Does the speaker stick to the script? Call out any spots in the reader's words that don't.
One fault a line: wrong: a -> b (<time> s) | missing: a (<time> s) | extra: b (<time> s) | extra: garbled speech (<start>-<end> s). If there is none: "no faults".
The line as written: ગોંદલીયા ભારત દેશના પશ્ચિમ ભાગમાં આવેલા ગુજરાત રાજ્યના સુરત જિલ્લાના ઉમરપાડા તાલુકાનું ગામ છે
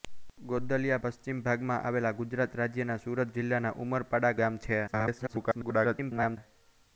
missing: ભારત દેશના (1.0 s)
missing: તાલુકાનું (4.4 s)
extra: garbled speech (4.9-6.4 s)